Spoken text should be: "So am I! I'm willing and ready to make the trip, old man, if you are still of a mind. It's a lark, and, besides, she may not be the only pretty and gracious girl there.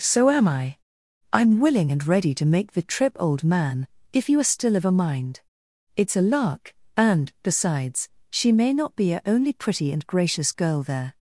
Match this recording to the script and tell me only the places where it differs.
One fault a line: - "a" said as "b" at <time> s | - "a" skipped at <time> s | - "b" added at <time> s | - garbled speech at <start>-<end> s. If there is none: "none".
- "the" said as "a" at 9.1 s